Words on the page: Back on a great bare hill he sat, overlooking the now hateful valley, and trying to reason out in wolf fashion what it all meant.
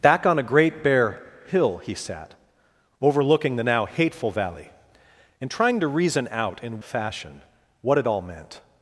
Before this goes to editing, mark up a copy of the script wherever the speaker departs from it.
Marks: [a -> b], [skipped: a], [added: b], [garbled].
Back on a great bare hill he sat, overlooking the now hateful valley, and trying to reason out in [skipped: wolf] fashion what it all meant.